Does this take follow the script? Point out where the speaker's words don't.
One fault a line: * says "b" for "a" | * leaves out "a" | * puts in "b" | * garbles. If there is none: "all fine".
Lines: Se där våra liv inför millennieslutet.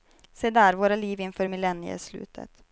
all fine